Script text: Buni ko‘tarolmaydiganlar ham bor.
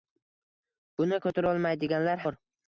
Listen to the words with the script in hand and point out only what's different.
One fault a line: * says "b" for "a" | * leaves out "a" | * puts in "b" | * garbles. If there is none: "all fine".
* leaves out "ham"